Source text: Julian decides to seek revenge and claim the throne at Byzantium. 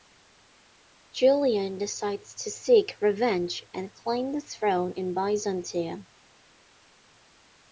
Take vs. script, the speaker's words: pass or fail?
fail